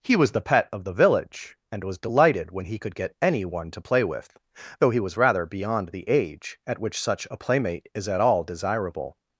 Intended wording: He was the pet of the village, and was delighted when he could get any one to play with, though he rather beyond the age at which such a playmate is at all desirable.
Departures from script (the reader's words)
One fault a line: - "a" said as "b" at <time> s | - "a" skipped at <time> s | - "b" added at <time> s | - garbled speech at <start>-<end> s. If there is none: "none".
- "was" added at 5.0 s